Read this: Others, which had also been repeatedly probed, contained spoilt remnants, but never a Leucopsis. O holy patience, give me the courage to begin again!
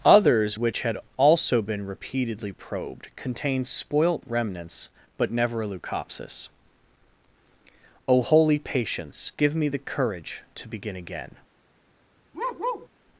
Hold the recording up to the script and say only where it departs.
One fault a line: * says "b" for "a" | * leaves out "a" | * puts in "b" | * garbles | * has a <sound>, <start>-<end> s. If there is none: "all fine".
* has a bark, 12.3-12.9 s